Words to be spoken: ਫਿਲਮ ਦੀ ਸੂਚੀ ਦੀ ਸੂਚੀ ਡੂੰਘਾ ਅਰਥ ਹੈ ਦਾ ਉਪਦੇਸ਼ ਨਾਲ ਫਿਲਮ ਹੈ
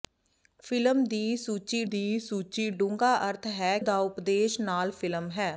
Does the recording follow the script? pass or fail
pass